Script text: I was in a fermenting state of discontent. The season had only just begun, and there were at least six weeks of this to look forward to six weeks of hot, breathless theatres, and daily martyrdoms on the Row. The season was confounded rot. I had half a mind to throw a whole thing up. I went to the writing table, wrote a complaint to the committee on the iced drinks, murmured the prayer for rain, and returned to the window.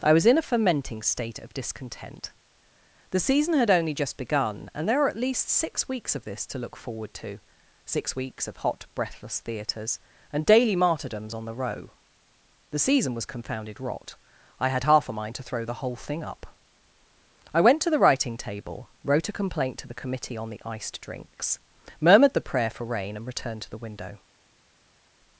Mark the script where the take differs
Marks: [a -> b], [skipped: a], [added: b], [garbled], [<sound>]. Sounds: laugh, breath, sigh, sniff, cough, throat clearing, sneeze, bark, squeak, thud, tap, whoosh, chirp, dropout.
I was in a fermenting state of discontent. The season had only just begun, and there were at least six weeks of this to look forward to six weeks of hot, breathless theatres, and daily martyrdoms on the Row. The season was confounded rot. I had half a mind to throw [a -> the] whole thing up. I went to the writing table, wrote a complaint to the committee on the iced drinks, murmured the prayer for rain, and returned to the window.